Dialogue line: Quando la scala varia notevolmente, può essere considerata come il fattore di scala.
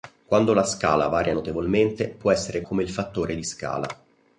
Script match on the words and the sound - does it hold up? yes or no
no